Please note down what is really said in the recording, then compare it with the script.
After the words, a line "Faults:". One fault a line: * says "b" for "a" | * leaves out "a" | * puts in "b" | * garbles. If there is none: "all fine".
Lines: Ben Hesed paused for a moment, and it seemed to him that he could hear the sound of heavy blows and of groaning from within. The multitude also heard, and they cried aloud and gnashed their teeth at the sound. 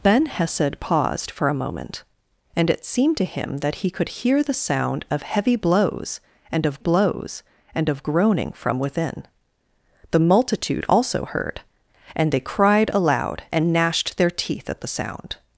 Ben Hesed paused for a moment, and it seemed to him that he could hear the sound of heavy blows and of blows and of groaning from within. The multitude also heard, and they cried aloud and gnashed their teeth at the sound.
Faults:
* puts in "blows and of"